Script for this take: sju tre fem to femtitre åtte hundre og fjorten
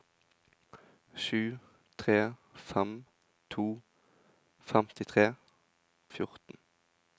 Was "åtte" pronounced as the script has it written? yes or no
no